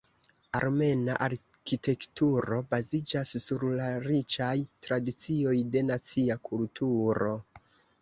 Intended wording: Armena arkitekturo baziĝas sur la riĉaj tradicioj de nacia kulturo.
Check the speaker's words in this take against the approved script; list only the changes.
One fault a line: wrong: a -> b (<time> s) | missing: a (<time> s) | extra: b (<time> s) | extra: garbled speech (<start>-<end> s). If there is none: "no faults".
no faults